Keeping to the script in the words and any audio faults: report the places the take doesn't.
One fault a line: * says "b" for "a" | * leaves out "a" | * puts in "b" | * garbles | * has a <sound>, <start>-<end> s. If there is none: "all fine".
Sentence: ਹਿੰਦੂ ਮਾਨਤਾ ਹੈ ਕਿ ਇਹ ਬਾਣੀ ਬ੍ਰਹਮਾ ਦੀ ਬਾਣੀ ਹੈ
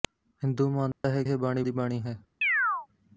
* has a dropout, 0.9-1.0 s
* leaves out "ਕਿ"
* leaves out "ਬ੍ਰਹਮਾ"
* has a chirp, 2.4-2.9 s